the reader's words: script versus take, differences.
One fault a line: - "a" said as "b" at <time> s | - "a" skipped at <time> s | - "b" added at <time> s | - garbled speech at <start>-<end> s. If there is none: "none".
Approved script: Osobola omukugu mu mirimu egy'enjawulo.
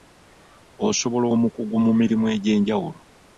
none